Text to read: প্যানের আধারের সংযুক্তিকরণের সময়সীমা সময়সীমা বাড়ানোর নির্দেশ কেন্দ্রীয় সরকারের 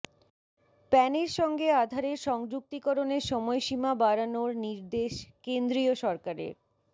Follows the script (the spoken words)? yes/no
no